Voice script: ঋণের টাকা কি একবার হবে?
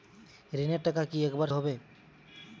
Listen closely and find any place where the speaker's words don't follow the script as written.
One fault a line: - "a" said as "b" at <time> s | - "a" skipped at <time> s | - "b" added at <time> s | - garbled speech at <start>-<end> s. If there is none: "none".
none